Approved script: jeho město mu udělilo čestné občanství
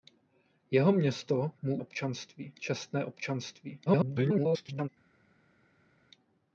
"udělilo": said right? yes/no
no